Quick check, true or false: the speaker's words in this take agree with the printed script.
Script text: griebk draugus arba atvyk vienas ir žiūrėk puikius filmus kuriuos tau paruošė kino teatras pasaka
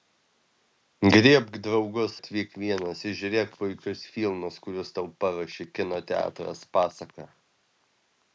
false